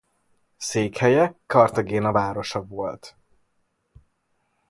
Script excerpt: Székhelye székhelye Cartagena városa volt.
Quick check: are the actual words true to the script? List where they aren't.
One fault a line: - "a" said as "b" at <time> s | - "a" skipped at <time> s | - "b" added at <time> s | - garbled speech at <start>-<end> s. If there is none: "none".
- "székhelye" skipped at 1.4 s